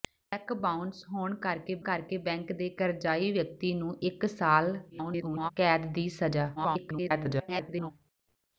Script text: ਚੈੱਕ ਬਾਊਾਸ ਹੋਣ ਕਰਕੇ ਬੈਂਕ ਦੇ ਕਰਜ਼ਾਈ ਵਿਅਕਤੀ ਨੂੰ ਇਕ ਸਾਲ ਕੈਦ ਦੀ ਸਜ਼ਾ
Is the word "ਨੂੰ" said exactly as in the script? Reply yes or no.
yes